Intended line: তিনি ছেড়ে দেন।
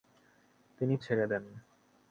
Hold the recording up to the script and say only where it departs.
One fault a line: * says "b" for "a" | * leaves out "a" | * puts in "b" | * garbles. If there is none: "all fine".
all fine